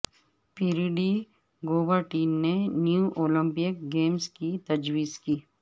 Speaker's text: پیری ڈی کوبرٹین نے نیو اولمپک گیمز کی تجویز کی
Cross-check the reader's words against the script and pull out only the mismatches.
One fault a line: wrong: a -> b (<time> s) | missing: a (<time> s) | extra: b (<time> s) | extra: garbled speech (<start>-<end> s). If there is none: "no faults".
no faults